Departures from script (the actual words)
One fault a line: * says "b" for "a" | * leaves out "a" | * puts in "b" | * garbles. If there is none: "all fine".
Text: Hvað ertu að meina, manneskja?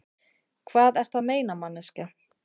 all fine